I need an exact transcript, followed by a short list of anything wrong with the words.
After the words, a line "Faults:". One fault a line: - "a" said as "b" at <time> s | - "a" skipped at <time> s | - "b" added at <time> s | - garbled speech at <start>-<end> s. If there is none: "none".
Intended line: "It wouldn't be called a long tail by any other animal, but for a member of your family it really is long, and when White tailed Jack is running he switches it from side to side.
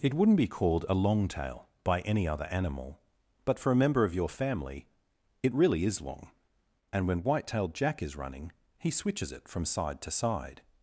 "It wouldn't be called a long tail by any other animal, but for a member of your family it really is long, and when White tailed Jack is running he switches it from side to side.
Faults:
none